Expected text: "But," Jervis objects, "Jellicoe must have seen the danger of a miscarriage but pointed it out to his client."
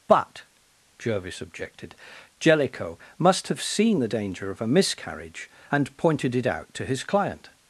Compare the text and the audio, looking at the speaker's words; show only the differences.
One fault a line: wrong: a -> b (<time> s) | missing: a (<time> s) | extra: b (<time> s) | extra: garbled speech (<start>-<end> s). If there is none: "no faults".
wrong: objects -> objected (1.4 s)
wrong: but -> and (5.7 s)